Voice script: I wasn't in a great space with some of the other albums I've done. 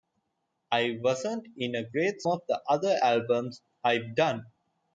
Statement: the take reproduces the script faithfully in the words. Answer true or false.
false